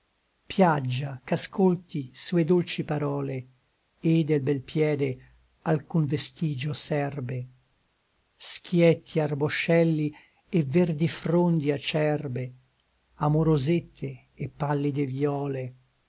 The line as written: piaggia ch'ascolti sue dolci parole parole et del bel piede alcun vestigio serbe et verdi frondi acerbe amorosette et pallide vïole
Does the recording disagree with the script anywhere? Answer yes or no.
yes